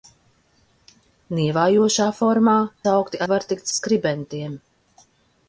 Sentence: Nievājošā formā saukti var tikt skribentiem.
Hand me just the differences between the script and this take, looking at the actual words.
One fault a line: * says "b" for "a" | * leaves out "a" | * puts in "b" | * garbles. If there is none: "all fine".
all fine